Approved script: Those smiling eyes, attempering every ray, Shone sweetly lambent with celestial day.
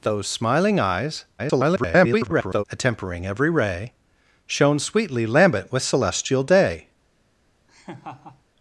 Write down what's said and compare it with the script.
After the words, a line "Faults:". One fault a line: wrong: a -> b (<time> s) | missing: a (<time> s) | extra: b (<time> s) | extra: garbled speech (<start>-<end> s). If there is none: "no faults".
Those smiling eyes, [garbled] attempering every ray, Shone sweetly lambent with celestial day.
Faults:
extra: garbled speech (1.4-2.6 s)